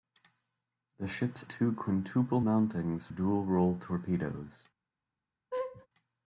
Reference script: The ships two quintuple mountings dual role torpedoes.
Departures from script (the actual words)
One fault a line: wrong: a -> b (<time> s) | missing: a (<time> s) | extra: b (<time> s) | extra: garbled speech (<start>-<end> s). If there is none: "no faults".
no faults